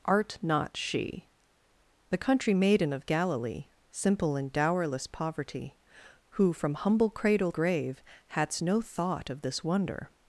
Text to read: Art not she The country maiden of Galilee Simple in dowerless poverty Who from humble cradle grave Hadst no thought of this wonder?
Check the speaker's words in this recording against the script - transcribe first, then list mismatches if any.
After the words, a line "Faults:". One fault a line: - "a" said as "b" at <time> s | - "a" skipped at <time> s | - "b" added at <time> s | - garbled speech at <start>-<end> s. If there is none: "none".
Art not she The country maiden of Galilee Simple in dowerless poverty Who from humble cradle grave Hadst no thought of this wonder?
Faults:
none